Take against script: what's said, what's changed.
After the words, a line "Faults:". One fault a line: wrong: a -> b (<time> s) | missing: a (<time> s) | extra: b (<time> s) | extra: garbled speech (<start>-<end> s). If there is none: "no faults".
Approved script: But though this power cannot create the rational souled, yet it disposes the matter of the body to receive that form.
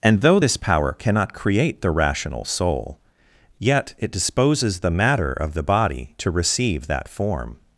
And though this power cannot create the rational soul, yet it disposes the matter of the body to receive that form.
Faults:
wrong: But -> And (0.0 s)
wrong: souled -> soul (2.4 s)